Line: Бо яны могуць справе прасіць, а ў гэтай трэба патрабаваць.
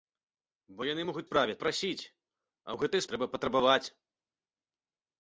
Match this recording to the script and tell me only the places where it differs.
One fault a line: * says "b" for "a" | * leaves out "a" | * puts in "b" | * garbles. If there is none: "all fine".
all fine